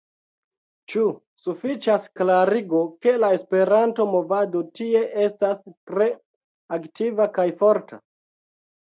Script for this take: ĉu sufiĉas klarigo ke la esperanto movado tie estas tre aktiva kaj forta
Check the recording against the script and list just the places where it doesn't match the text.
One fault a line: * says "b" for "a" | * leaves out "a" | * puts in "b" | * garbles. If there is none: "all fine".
all fine